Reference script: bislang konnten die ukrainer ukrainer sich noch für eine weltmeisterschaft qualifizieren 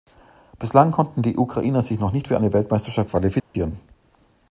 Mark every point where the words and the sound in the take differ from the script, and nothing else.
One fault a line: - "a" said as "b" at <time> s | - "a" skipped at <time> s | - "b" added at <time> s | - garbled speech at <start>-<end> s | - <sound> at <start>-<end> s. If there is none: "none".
- "ukrainer" skipped at 1.8 s
- "nicht" added at 2.1 s
- dropout at 3.4-3.5 s